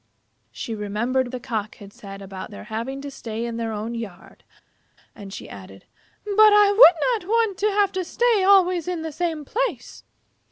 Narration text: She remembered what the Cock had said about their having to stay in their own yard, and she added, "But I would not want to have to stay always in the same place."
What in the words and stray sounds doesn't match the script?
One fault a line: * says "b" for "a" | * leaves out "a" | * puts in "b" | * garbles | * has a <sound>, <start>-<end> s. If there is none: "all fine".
* leaves out "what"